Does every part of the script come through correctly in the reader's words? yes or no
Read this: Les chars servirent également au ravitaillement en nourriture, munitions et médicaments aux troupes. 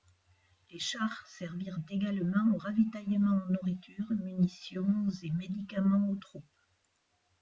yes